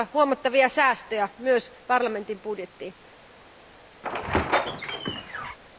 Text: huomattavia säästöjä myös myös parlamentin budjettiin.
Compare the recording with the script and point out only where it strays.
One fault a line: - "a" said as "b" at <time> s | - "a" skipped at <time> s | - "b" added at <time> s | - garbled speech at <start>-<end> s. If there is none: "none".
- "myös" skipped at 1.7 s